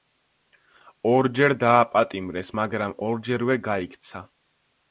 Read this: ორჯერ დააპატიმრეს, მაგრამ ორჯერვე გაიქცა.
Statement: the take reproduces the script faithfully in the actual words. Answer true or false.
true